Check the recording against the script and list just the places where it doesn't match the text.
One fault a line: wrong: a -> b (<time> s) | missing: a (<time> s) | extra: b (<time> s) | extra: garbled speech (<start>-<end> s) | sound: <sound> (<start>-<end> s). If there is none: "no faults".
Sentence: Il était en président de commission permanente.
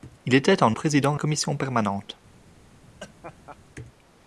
sound: laugh (3.0-3.6 s)